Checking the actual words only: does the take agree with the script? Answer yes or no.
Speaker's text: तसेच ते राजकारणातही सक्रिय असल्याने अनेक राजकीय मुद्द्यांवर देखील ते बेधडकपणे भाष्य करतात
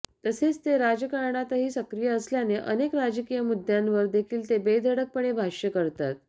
yes